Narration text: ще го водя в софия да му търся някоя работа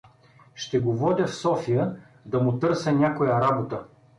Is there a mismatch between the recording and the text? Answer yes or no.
no